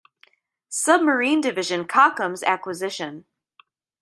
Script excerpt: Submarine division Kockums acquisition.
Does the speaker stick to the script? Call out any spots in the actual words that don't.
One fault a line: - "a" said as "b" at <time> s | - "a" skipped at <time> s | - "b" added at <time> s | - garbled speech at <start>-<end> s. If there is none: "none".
none